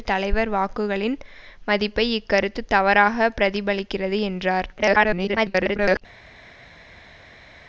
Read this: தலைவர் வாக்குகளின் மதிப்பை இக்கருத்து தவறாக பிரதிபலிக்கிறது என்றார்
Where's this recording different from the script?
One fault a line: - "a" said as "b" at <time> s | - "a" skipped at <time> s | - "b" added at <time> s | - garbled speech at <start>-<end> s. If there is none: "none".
- garbled speech at 4.8-6.0 s